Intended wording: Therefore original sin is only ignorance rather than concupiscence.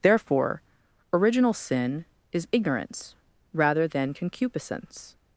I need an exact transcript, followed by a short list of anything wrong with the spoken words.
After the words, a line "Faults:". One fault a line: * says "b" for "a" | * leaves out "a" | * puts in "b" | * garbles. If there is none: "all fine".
Therefore original sin is ignorance rather than concupiscence.
Faults:
* leaves out "only"